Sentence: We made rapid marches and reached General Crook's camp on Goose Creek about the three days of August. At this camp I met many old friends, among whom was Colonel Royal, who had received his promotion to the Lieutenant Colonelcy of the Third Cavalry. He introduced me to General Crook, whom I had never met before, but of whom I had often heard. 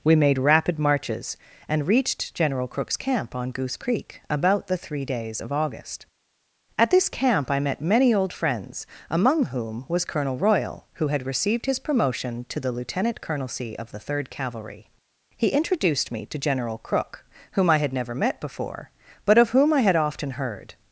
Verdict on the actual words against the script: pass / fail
pass